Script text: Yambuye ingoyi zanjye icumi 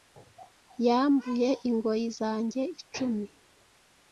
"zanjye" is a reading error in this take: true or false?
false